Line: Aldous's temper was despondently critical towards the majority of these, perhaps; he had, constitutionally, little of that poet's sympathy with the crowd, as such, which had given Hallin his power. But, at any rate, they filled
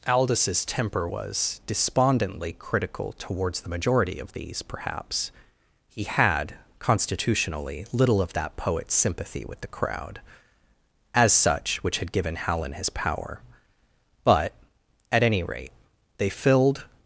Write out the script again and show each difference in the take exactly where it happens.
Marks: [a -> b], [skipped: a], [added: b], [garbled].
Aldous's temper was despondently critical towards the majority of these, perhaps; he had, constitutionally, little of that poet's sympathy with the crowd, as such, which had given Hallin his power. But, at any rate, they filled